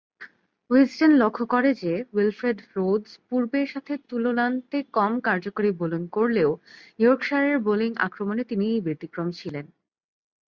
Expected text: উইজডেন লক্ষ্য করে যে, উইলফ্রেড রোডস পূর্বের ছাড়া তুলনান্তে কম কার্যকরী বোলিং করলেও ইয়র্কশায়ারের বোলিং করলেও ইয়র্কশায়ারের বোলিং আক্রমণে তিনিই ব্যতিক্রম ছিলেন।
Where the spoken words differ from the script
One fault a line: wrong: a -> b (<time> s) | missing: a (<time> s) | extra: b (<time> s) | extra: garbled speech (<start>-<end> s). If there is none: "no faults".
wrong: ছাড়া -> সাথে (3.6 s)
missing: করলেও ইয়র্কশায়ারের বোলিং (7.9 s)